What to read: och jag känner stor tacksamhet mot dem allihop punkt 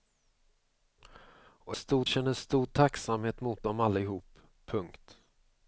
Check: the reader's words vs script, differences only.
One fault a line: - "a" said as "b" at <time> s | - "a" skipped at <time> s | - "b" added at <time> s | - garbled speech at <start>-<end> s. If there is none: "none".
- "jag" said as "stor" at 1.7 s